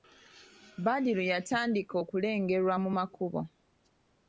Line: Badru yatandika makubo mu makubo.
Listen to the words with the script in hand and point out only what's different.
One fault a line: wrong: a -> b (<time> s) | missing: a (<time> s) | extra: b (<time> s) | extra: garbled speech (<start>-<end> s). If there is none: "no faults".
wrong: makubo -> okulengerwa (2.0 s)